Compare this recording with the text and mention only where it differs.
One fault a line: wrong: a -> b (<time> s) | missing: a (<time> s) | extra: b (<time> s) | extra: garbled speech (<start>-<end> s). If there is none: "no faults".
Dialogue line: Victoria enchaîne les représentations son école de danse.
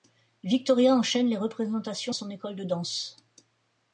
no faults